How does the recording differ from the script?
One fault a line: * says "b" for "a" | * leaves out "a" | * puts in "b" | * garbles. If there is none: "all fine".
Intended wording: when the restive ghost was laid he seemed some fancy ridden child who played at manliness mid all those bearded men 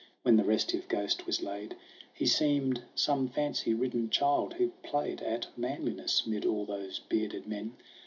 all fine